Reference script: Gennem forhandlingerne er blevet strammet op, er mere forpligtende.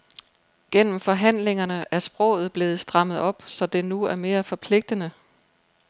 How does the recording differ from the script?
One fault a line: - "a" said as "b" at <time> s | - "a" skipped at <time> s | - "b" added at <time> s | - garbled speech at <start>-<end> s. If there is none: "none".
- "sproget" added at 2.0 s
- "så det nu" added at 3.5 s